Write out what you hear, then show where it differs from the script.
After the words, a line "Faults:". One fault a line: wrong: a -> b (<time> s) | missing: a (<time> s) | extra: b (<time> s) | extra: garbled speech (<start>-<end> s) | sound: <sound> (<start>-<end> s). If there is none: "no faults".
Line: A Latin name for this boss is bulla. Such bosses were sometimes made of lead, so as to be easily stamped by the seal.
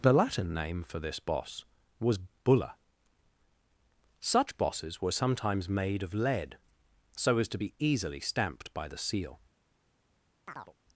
The Latin name for this boss was bulla. Such bosses were sometimes made of lead, so as to be easily stamped by the seal.
Faults:
wrong: A -> The (0.0 s)
wrong: is -> was (2.0 s)
sound: chirp (10.5-10.7 s)